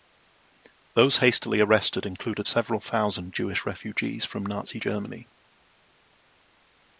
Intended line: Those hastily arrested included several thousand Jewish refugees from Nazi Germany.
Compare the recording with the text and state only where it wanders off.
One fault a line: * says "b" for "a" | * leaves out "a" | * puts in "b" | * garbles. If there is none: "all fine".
all fine